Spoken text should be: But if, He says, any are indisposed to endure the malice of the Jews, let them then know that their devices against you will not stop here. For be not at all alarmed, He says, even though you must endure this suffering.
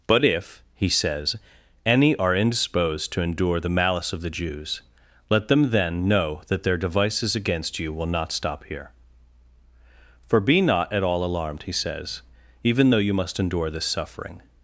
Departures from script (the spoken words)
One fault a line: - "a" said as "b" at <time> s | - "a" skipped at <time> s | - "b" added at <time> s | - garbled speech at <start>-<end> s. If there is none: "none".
none